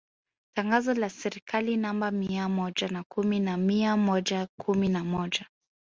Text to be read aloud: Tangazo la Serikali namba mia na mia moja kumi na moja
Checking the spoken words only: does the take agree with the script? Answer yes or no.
no